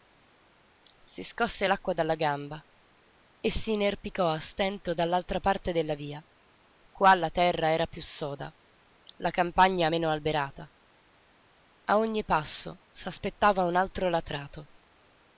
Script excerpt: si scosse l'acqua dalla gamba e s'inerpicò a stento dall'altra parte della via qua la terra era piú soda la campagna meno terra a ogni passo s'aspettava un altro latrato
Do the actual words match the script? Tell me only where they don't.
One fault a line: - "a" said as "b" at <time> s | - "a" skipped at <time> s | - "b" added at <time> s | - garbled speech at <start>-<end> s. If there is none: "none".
- "terra" said as "alberata" at 10.1 s